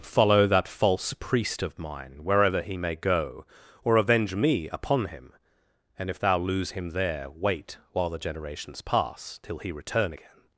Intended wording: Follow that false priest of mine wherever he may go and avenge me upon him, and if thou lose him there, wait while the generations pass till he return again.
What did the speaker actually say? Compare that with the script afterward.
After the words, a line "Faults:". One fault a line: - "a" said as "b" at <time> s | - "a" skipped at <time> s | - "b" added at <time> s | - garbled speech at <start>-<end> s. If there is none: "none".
Follow that false priest of mine wherever he may go or avenge me upon him, and if thou lose him there, wait while the generations pass till he return again.
Faults:
- "and" said as "or" at 3.8 s